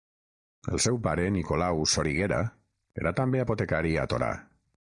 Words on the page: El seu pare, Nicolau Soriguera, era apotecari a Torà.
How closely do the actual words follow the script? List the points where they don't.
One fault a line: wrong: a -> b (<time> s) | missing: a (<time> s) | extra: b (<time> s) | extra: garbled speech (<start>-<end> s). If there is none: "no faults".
extra: també (3.2 s)